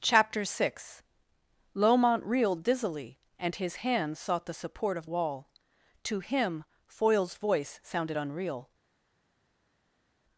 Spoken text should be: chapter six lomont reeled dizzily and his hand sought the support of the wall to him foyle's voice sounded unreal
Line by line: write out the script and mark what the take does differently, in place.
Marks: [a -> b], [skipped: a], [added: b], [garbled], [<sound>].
chapter six lomont reeled dizzily and his hand sought the support of [skipped: the] wall to him foyle's voice sounded unreal